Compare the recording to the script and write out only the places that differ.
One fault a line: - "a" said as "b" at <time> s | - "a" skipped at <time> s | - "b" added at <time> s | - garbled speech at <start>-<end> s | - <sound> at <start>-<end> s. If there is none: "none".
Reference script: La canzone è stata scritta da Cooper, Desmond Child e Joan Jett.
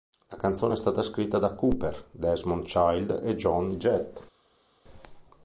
none